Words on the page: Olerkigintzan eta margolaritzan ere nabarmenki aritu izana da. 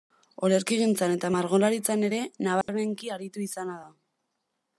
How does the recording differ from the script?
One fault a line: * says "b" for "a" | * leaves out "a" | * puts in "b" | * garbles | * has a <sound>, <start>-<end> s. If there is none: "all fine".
* has a dropout, 2.6-2.7 s